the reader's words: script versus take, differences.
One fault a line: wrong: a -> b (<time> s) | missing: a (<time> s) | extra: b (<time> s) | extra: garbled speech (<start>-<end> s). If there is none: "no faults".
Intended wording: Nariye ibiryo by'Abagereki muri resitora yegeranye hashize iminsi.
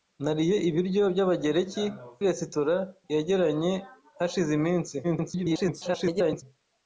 missing: muri (1.8 s)
extra: garbled speech (5.0-6.4 s)